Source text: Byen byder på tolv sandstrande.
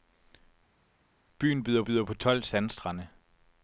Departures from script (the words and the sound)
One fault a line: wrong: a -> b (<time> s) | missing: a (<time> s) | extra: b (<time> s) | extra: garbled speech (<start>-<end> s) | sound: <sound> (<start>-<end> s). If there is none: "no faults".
extra: byder (1.8 s)